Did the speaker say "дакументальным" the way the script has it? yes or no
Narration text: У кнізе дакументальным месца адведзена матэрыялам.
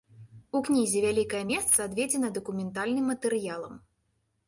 no